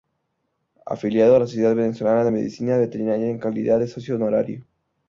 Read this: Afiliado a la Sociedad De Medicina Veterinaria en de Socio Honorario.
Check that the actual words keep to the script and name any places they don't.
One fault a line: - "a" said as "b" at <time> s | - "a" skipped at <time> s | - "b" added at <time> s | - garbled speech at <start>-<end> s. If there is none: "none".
- "Venezolana" added at 1.7 s
- "calidad" added at 3.4 s